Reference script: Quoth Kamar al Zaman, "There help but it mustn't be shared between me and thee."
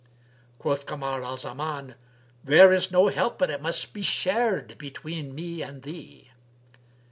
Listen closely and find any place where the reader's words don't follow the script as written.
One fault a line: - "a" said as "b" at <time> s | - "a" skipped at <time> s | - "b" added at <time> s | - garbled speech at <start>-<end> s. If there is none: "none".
- "is no" added at 2.7 s
- "mustn't" said as "must" at 3.6 s